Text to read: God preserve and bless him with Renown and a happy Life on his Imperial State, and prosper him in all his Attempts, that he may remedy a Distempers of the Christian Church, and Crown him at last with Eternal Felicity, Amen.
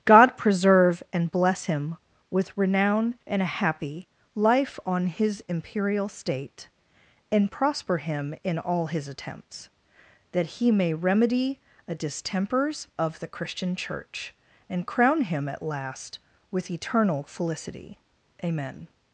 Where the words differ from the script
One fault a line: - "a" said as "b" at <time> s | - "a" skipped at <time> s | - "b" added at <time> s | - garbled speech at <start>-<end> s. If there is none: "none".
none